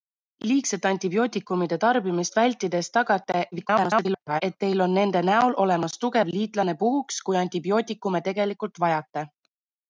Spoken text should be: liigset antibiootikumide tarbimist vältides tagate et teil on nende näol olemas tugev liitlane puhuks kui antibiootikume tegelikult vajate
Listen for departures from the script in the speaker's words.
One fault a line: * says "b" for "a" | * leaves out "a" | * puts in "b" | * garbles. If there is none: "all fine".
* garbles